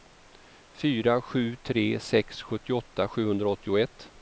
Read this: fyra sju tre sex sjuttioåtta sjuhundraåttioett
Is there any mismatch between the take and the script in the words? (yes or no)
no